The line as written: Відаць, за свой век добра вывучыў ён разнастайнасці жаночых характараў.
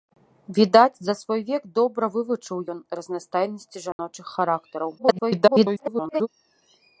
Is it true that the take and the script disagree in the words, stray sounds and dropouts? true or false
true